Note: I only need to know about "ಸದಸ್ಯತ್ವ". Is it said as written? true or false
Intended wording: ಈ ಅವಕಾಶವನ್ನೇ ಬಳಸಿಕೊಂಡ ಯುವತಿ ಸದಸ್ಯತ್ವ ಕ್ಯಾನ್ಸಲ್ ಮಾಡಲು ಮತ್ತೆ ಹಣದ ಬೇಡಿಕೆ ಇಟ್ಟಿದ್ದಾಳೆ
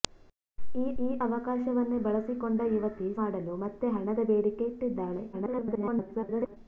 false